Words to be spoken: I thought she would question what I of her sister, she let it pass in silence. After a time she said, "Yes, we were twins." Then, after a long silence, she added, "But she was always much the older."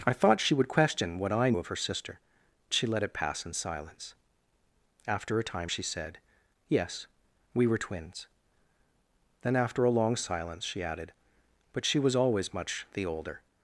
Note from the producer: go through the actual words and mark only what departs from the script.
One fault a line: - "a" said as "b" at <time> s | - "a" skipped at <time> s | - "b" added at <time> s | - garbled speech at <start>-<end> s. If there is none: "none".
none